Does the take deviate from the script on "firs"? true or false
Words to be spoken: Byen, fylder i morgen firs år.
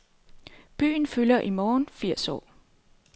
false